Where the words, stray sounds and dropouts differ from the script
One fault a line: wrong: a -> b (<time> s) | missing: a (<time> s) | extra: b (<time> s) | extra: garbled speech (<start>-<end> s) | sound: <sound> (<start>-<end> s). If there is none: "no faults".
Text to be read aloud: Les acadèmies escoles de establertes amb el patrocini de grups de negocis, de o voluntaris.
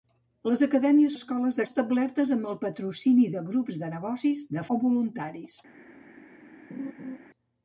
sound: laugh (6.7-7.2 s)